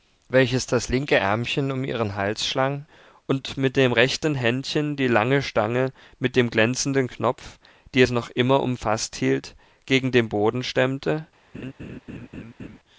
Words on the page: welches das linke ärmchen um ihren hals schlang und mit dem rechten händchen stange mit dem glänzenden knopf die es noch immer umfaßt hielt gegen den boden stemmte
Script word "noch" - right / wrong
right